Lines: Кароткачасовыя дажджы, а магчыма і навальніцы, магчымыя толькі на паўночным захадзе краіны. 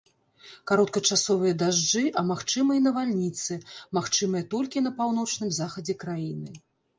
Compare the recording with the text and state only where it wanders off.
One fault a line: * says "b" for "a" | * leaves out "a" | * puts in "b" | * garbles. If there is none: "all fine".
all fine